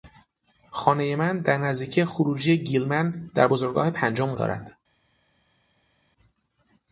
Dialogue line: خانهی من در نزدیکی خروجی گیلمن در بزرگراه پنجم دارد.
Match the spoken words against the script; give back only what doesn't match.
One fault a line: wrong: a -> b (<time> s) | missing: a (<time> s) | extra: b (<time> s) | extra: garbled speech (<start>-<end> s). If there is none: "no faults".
no faults